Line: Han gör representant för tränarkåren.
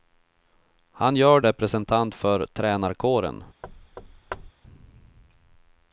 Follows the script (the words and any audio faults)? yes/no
no